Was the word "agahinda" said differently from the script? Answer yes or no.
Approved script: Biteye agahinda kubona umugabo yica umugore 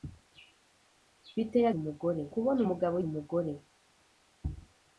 yes